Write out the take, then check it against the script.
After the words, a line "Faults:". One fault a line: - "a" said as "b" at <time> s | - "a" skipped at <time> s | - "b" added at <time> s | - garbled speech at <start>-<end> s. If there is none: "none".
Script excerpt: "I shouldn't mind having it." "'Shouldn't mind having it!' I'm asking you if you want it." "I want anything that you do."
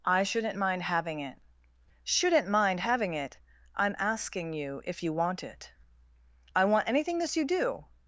"I shouldn't mind having it." "'Shouldn't mind having it!' I'm asking you if you want it." "I want anything this you do."
Faults:
- "that" said as "this" at 7.2 s